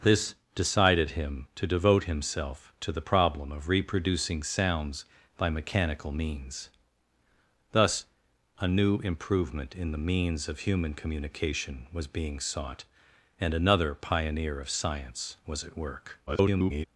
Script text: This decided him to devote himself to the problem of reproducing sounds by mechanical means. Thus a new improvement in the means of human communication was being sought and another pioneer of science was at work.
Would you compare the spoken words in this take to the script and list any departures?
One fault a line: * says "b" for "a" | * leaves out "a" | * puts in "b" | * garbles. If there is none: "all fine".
* garbles